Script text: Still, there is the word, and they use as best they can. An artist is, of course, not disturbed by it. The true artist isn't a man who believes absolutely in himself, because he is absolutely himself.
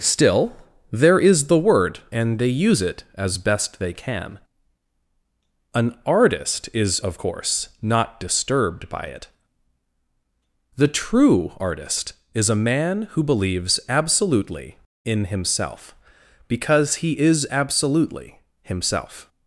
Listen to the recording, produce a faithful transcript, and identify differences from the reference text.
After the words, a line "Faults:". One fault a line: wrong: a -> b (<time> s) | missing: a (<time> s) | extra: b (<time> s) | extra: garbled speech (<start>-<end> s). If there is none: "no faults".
Still, there is the word, and they use it as best they can. An artist is, of course, not disturbed by it. The true artist is a man who believes absolutely in himself, because he is absolutely himself.
Faults:
extra: it (2.8 s)
wrong: isn't -> is (12.3 s)